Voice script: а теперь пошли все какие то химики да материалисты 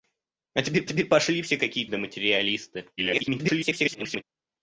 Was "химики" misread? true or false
true